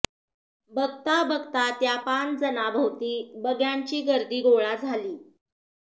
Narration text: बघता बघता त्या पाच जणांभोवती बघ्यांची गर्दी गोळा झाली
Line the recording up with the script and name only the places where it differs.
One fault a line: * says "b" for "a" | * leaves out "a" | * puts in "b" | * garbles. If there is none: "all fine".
all fine